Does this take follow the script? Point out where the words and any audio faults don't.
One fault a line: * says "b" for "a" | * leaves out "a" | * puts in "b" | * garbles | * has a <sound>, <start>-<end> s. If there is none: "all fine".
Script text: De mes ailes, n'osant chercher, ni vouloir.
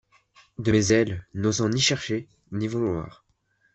* puts in "ni"